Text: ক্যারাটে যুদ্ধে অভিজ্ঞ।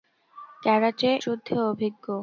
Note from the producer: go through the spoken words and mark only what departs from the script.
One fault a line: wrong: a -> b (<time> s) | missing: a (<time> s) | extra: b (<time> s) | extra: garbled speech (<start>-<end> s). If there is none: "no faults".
no faults